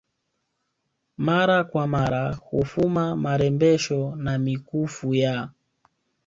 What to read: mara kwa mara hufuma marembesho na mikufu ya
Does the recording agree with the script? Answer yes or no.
yes